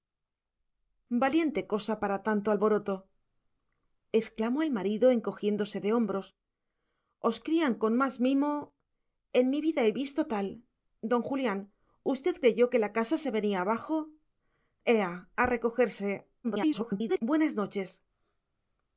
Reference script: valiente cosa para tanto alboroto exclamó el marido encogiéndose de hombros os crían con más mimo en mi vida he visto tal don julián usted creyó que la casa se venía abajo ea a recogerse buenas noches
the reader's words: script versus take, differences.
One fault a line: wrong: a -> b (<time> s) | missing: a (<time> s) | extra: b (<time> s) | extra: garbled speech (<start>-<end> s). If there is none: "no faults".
extra: garbled speech (16.4-17.2 s)